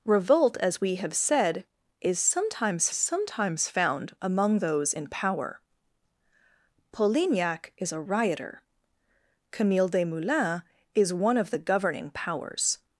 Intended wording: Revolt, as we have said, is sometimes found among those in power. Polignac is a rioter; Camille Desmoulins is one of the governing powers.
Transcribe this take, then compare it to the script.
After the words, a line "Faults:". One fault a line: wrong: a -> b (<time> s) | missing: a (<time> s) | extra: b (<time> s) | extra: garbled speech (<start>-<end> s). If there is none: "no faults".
Revolt, as we have said, is sometimes sometimes found among those in power. Polignac is a rioter; Camille Desmoulins is one of the governing powers.
Faults:
extra: sometimes (2.9 s)